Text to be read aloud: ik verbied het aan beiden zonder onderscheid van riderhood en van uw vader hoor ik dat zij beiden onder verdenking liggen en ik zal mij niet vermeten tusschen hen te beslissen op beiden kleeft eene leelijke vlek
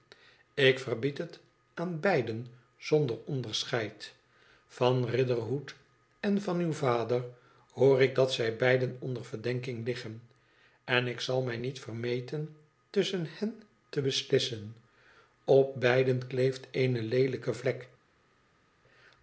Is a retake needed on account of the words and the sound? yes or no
no